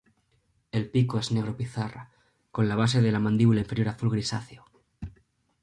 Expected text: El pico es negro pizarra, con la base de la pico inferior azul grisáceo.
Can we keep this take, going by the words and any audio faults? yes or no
no